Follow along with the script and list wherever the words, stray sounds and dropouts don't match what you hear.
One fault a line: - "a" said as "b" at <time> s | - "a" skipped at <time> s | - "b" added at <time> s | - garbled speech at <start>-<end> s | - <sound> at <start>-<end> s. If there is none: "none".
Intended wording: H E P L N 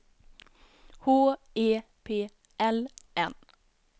none